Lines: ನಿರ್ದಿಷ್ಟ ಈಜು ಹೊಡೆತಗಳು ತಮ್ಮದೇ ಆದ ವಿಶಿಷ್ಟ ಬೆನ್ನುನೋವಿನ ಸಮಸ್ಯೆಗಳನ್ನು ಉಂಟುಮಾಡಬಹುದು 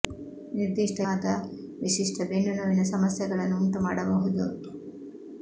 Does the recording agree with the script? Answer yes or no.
no